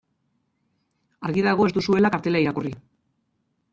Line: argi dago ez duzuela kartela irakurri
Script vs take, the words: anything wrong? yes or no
no